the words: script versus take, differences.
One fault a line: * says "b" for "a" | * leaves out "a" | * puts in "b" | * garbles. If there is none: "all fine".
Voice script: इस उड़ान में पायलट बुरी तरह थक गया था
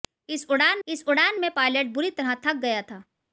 * puts in "इस उड़ान"